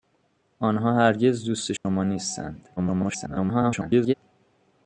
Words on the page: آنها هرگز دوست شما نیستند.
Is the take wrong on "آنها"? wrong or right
right